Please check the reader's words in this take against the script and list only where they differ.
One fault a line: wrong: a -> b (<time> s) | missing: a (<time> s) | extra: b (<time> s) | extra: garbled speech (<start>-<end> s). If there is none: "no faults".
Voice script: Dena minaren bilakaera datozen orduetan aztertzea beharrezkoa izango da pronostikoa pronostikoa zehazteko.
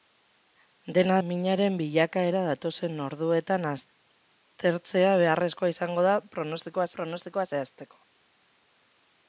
no faults